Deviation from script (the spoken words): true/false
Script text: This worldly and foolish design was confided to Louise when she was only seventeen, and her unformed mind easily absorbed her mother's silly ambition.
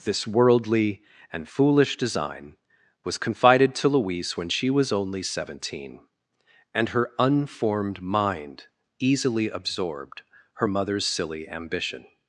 false